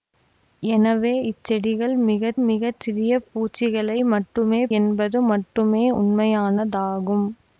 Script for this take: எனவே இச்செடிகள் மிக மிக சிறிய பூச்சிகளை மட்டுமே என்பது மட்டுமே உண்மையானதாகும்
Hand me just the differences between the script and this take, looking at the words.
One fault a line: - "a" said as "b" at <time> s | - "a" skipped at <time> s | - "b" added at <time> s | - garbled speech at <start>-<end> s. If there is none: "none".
none